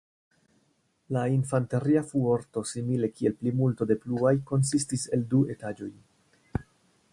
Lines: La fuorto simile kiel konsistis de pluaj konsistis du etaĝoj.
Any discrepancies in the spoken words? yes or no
yes